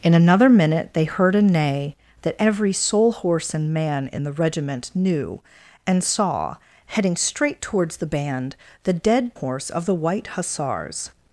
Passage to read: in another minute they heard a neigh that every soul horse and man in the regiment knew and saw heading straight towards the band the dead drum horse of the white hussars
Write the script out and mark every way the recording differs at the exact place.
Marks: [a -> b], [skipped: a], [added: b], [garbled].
in another minute they heard a neigh that every soul horse and man in the regiment knew and saw heading straight towards the band the dead [skipped: drum] horse of the white hussars